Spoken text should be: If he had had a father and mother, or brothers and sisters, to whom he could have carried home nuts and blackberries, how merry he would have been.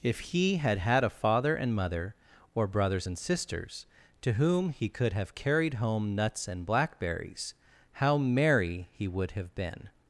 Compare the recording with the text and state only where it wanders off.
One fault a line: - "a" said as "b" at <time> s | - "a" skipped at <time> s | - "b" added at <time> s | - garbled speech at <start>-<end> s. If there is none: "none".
none